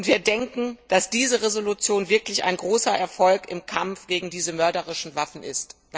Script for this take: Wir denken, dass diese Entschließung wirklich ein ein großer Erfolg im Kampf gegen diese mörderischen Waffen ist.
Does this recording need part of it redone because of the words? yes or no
yes